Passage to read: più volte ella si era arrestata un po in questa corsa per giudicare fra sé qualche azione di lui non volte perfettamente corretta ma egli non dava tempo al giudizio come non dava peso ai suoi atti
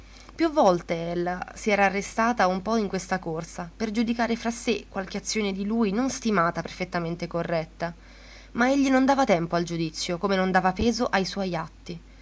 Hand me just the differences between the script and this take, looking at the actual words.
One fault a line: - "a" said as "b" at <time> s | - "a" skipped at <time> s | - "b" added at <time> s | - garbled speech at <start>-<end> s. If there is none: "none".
- "volte" said as "stimata" at 6.1 s